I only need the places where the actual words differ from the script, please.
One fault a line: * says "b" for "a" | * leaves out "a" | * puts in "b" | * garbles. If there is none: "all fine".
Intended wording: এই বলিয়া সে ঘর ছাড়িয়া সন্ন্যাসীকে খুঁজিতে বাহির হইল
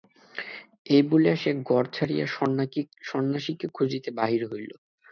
all fine